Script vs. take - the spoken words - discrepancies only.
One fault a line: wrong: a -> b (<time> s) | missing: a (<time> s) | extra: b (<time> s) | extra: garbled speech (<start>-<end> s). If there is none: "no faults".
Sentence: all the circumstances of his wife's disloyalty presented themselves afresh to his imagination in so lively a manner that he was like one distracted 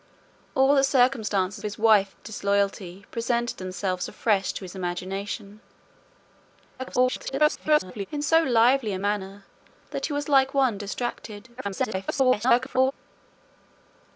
missing: of (1.6 s)
extra: garbled speech (6.8-8.1 s)
extra: garbled speech (11.6-12.9 s)